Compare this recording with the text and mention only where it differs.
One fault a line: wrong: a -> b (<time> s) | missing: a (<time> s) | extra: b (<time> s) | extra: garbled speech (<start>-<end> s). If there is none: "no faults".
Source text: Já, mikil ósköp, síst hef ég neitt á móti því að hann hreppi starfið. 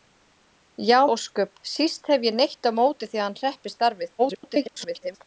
missing: mikil (1.0 s)
extra: garbled speech (4.2-5.2 s)